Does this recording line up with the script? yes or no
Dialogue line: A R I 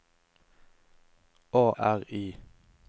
yes